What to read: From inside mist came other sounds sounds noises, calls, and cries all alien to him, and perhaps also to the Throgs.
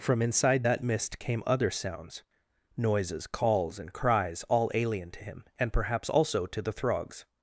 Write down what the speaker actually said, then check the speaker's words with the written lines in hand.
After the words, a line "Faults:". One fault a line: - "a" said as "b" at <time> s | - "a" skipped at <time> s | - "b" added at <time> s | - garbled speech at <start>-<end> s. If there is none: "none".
From inside that mist came other sounds noises, calls, and cries all alien to him, and perhaps also to the Throgs.
Faults:
- "that" added at 0.6 s
- "sounds" skipped at 2.2 s